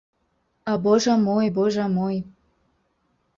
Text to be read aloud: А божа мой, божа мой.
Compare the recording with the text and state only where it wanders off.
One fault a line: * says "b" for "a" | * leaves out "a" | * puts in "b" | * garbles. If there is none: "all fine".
all fine